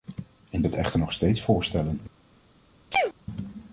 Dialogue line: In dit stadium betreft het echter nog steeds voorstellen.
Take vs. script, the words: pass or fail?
fail